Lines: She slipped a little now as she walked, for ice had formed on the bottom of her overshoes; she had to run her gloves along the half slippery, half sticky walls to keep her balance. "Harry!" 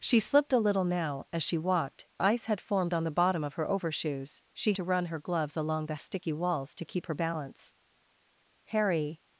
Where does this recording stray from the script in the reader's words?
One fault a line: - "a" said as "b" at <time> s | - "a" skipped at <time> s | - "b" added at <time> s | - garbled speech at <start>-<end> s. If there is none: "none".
- "for" skipped at 2.1 s
- "had" skipped at 4.7 s
- "half slippery half" skipped at 6.0 s